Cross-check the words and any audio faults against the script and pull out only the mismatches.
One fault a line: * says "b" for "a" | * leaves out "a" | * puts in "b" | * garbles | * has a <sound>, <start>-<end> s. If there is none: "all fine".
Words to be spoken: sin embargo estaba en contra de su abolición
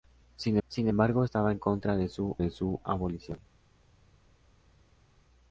* puts in "sin"
* puts in "de su"